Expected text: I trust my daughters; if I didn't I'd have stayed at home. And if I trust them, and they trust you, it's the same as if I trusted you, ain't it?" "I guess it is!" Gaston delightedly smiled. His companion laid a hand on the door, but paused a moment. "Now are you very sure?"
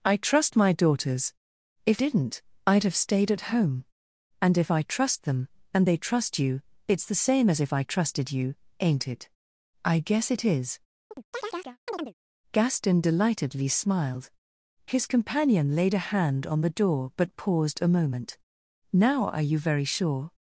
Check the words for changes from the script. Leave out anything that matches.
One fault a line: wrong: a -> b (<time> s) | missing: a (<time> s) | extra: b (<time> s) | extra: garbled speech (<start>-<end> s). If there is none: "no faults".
missing: I (2.0 s)